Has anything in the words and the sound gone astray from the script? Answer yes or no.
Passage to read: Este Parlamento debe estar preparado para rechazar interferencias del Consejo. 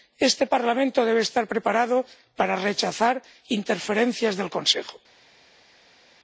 no